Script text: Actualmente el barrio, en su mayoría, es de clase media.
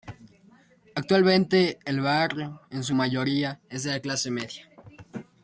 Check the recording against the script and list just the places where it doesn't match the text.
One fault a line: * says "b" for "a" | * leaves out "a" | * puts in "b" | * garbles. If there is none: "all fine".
all fine